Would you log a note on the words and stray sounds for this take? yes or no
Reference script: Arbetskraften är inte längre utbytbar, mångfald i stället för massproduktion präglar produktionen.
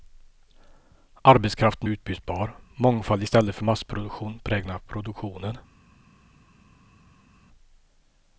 yes